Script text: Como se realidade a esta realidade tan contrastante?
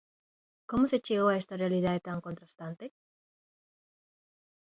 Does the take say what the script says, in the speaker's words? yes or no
no